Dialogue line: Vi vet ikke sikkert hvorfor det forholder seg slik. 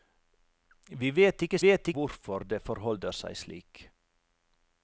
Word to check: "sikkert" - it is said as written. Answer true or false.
false